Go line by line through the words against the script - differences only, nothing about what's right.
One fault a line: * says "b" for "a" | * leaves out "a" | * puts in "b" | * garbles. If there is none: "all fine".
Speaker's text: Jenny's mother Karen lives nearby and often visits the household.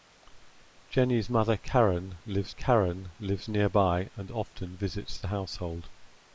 * puts in "Karen lives"